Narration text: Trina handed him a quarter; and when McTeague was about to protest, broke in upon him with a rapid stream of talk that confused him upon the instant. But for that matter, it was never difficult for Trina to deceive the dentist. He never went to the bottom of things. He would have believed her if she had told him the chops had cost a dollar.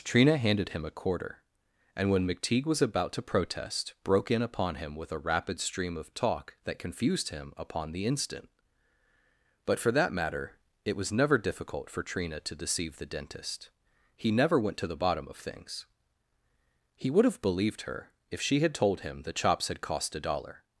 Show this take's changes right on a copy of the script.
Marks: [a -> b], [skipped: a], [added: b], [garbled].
Trina handed him a quarter; and when McTeague was about to protest, broke in upon him with a rapid stream of talk that confused him upon the instant. But for that matter, it was never difficult for Trina to deceive the dentist. He never went to the bottom of things. He would have believed her if she had told him the chops had cost a dollar.